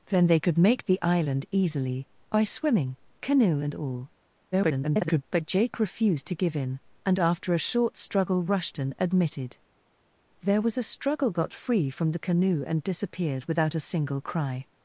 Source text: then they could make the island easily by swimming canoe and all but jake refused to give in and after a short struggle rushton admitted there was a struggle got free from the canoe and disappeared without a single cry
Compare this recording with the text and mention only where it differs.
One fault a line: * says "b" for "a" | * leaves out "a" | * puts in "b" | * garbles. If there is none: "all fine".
* garbles